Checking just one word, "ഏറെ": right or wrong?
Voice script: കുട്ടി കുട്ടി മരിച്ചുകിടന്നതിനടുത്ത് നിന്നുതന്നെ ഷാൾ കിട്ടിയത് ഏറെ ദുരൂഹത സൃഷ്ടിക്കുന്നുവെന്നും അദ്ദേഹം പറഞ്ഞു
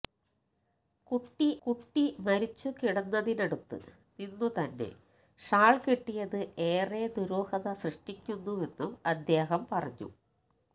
right